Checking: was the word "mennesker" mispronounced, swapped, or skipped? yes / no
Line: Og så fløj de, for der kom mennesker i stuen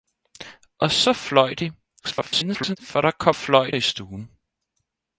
yes